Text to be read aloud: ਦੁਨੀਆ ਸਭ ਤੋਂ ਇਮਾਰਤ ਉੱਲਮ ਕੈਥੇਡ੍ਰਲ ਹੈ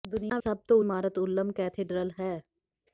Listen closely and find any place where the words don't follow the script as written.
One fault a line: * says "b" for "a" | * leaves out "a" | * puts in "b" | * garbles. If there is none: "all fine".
all fine